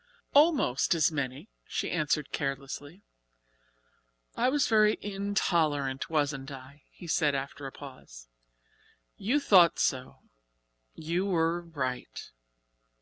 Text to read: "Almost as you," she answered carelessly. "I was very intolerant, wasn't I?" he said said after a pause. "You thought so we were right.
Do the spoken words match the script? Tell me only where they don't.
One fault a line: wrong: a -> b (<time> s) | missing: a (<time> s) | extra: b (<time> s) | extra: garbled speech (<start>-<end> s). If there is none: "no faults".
wrong: you -> many (1.1 s)
missing: said (7.3 s)
wrong: we -> you (10.9 s)